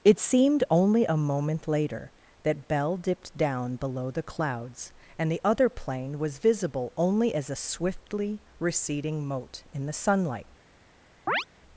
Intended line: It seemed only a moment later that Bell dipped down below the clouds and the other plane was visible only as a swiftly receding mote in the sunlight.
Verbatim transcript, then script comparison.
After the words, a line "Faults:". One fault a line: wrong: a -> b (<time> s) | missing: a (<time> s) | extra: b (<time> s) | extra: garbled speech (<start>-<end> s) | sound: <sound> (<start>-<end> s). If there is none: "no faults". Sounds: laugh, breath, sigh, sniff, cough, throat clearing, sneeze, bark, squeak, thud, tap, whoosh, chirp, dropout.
It seemed only a moment later that Bell dipped down below the clouds and the other plane was visible only as a swiftly receding mote in the sunlight.
Faults:
sound: chirp (11.3-11.5 s)